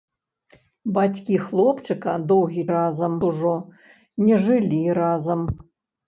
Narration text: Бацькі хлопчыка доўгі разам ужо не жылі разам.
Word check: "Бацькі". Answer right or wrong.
right